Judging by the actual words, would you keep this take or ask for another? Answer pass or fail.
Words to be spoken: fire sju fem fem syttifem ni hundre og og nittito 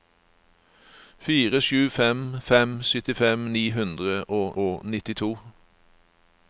pass